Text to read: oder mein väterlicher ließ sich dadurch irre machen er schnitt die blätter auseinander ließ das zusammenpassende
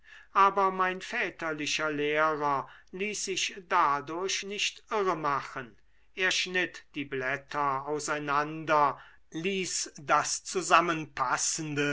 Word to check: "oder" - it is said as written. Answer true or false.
false